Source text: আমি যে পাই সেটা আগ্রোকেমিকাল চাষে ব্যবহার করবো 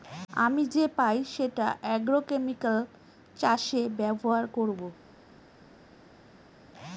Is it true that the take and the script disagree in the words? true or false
false